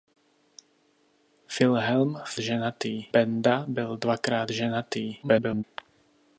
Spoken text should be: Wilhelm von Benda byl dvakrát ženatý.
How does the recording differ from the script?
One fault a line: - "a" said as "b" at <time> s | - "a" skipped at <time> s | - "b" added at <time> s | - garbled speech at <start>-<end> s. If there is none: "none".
- "von" said as "ženatý" at 2.4 s
- garbled speech at 5.2-5.6 s